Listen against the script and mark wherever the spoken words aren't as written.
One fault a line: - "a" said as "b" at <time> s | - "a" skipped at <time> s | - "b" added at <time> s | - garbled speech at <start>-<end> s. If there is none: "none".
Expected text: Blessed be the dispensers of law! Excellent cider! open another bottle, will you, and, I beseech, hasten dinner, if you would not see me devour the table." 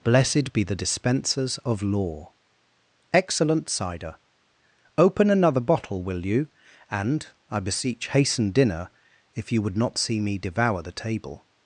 none